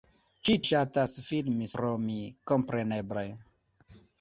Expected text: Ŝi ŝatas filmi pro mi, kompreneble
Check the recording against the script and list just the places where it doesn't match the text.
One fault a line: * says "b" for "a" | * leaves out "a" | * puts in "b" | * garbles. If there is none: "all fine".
all fine